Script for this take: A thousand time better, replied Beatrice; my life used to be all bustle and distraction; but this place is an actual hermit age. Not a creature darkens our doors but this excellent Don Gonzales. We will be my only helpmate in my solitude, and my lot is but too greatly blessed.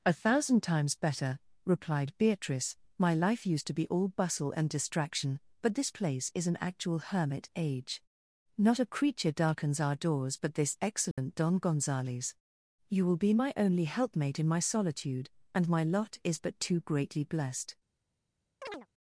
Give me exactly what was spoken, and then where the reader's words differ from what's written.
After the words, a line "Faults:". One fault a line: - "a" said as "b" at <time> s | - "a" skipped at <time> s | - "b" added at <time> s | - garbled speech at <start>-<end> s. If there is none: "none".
A thousand times better, replied Beatrice; my life used to be all bustle and distraction; but this place is an actual hermit age. Not a creature darkens our doors but this excellent Don Gonzales. You will be my only helpmate in my solitude, and my lot is but too greatly blessed.
Faults:
- "time" said as "times" at 0.6 s
- "We" said as "You" at 12.9 s